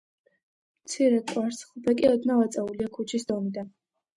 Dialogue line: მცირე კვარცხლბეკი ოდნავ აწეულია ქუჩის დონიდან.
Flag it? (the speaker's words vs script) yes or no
no